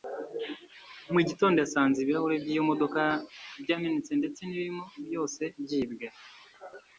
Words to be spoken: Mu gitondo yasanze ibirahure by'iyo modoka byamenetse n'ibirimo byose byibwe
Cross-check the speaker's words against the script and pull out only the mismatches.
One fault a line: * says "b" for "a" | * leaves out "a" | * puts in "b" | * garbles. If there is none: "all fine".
* puts in "ndetse"